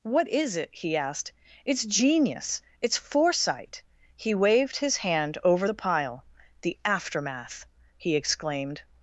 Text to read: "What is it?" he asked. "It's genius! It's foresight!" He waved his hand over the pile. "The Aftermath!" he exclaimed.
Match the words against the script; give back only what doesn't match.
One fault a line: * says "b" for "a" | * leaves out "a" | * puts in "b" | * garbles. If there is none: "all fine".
all fine